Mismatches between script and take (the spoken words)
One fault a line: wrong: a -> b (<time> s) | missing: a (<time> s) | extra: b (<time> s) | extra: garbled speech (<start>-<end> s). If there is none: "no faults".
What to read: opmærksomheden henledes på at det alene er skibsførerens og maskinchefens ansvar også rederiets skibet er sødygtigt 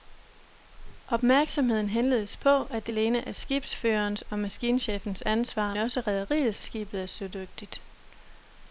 no faults